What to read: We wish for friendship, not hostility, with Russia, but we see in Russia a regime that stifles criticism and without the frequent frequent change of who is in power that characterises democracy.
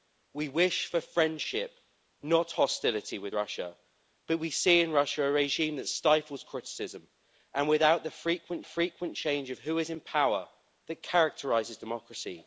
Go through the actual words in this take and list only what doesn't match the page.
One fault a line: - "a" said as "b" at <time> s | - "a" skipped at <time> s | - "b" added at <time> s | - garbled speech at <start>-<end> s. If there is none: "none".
none